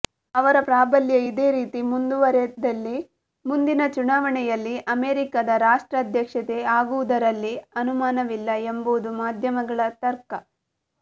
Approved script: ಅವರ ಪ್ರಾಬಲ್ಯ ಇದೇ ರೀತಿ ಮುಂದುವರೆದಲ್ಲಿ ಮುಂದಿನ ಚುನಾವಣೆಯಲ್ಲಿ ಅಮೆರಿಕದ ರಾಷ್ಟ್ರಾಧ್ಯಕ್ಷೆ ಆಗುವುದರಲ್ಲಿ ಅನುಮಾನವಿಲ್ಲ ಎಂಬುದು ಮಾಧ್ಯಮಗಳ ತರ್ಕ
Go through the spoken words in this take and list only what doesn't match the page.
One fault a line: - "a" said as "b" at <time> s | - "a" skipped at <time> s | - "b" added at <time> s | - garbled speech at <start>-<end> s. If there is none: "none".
none